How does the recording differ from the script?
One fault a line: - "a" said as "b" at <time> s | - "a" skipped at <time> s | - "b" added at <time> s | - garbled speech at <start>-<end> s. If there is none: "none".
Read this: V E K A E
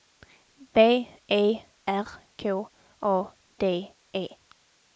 - "R" added at 1.9 s
- "D" added at 3.6 s